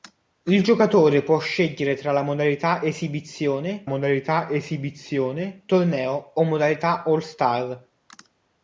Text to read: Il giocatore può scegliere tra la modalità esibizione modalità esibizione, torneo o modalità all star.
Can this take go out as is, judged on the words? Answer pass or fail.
pass